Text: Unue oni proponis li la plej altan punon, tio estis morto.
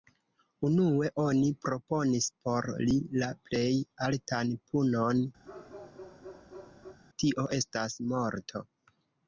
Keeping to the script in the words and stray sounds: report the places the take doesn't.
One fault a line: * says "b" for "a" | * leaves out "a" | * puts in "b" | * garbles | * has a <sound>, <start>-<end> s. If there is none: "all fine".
* puts in "por"
* has a bark, 5.4-7.0 s
* says "estas" for "estis"